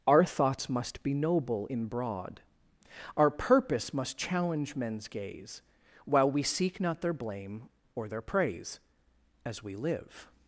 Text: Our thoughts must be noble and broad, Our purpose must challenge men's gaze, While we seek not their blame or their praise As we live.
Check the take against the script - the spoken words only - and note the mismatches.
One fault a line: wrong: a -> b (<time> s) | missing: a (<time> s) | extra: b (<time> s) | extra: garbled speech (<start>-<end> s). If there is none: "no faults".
wrong: and -> in (1.6 s)